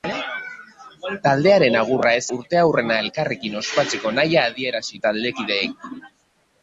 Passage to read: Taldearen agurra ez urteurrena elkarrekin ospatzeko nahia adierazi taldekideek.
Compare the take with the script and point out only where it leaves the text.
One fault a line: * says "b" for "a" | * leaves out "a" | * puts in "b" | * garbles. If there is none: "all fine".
all fine